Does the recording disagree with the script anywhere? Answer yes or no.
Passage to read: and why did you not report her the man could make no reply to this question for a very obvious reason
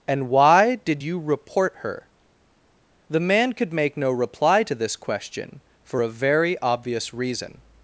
yes